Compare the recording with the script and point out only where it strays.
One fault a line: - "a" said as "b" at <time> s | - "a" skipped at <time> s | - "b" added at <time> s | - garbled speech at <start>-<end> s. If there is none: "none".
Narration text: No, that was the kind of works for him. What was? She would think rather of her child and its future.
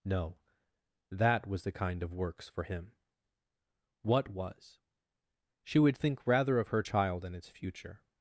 none